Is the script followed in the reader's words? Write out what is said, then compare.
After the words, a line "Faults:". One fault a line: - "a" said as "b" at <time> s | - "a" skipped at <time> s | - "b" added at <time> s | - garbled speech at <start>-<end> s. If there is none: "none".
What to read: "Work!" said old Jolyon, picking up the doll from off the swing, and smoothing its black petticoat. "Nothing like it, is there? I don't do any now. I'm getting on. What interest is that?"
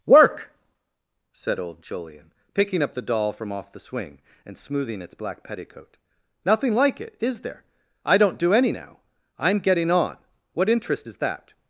"Work!" said old Jolyon, picking up the doll from off the swing, and smoothing its black petticoat. "Nothing like it, is there? I don't do any now. I'm getting on. What interest is that?"
Faults:
none